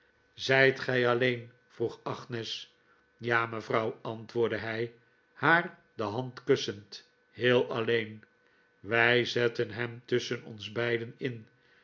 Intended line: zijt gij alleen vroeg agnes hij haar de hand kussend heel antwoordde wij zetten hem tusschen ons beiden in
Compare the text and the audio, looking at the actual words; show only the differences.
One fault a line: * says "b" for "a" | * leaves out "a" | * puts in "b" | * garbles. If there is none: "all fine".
* puts in "ja mevrouw antwoordde"
* says "alleen" for "antwoordde"